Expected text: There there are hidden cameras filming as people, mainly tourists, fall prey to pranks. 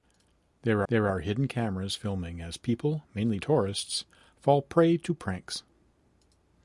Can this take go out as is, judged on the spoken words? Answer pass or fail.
pass